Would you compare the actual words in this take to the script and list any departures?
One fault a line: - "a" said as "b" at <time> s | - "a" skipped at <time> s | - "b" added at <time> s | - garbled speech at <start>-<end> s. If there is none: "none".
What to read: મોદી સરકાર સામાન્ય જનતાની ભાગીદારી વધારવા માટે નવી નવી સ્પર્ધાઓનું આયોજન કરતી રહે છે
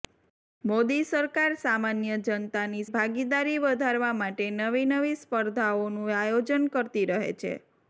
none